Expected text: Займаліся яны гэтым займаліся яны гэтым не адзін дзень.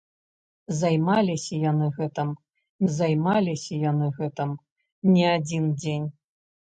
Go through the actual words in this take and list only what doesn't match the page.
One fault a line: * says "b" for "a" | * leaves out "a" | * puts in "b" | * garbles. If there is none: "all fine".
all fine